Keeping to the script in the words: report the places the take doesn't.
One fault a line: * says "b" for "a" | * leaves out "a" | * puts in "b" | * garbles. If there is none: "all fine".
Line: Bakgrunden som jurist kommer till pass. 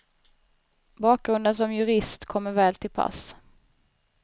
* puts in "väl"